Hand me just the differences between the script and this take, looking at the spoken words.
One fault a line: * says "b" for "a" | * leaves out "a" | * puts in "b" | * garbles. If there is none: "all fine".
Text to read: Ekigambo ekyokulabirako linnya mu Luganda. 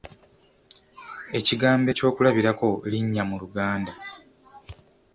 all fine